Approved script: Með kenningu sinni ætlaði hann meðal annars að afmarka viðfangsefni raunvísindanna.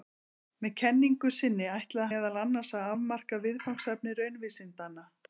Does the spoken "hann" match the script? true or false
false